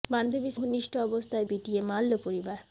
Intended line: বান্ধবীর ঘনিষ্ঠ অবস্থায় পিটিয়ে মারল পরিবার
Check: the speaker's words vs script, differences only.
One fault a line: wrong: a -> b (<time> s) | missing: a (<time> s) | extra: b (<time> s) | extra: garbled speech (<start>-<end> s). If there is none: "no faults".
no faults